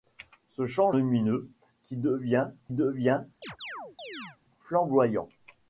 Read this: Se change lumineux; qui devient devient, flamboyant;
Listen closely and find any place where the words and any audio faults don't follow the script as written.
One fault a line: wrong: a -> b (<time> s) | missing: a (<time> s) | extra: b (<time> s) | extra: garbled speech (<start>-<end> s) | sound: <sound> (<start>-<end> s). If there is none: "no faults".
sound: chirp (3.4-4.4 s)